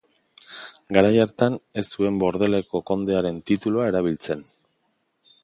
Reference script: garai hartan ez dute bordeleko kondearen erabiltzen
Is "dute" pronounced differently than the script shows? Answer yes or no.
yes